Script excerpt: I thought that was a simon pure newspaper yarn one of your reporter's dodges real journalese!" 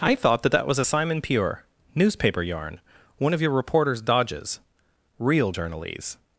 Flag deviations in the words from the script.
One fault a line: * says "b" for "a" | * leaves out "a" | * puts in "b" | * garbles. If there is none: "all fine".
* puts in "that"